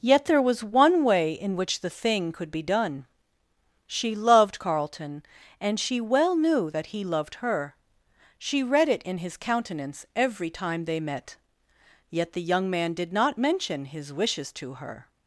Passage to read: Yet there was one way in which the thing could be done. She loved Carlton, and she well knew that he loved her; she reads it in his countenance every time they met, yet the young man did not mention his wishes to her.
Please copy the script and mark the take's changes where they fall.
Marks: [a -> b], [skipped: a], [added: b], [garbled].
Yet there was one way in which the thing could be done. She loved Carlton, and she well knew that he loved her; she [reads -> read] it in his countenance every time they met, yet the young man did not mention his wishes to her.